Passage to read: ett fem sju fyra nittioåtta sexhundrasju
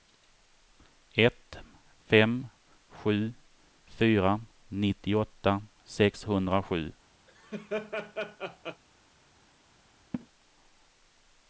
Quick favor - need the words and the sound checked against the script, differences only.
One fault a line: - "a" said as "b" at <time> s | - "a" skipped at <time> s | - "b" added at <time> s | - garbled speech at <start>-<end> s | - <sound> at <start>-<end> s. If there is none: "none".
- laugh at 7.3-8.8 s
- laugh at 10.1-10.3 s